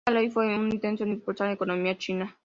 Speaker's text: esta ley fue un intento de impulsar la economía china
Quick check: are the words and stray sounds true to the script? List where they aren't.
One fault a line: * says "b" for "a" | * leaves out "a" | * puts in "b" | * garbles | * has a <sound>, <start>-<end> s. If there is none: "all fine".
all fine